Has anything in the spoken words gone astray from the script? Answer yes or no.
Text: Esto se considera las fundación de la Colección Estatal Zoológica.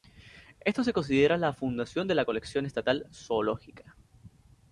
yes